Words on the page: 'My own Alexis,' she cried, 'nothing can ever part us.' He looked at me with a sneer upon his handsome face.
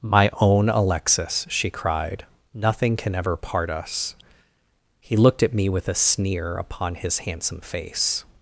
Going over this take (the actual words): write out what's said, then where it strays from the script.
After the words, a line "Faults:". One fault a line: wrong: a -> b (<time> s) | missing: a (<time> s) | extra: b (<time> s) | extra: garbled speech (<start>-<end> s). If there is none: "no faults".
'My own Alexis,' she cried, 'nothing can ever part us.' He looked at me with a sneer upon his handsome face.
Faults:
no faults